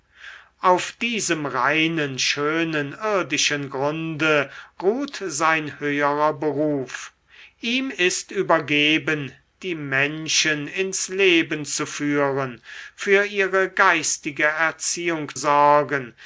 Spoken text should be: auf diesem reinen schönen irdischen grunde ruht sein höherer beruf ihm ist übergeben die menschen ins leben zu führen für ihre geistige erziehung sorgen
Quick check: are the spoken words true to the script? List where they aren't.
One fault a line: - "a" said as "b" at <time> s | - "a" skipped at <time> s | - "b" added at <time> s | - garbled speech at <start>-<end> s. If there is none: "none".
none